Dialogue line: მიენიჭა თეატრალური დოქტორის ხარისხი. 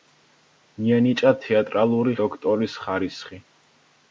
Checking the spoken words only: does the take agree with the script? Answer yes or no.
yes